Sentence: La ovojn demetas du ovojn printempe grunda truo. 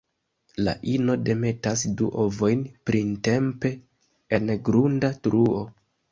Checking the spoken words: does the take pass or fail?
fail